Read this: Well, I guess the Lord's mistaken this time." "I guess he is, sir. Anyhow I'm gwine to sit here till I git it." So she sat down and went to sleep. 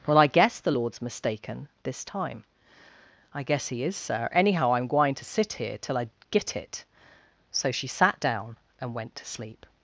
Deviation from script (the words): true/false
false